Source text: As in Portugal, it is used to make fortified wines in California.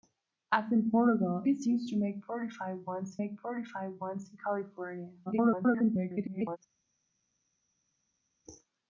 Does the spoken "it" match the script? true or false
false